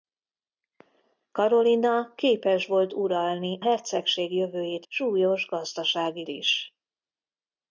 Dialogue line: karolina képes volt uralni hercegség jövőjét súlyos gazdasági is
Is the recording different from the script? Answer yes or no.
no